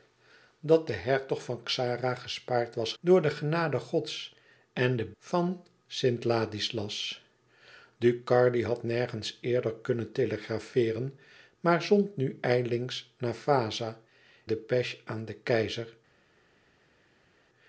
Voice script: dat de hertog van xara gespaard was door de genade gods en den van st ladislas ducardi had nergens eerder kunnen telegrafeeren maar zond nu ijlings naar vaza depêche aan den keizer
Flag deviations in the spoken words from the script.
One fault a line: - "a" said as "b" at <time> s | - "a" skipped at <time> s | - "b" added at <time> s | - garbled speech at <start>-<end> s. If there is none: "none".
none